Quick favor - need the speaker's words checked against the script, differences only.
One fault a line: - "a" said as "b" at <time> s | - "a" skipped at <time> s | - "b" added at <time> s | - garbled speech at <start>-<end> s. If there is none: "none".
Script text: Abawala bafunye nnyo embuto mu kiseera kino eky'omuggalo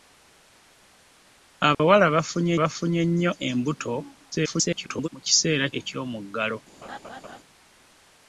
- "bafunye" added at 2.6 s
- garbled speech at 4.3-5.1 s
- "kino" skipped at 5.6 s